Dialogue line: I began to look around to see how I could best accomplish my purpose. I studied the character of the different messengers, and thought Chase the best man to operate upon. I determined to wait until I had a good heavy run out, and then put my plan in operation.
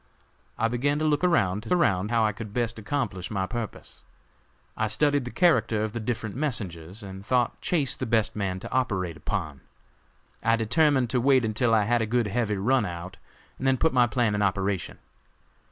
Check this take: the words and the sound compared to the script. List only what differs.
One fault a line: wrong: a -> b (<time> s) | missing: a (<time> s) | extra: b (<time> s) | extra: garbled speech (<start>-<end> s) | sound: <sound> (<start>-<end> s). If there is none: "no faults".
wrong: see -> around (1.7 s)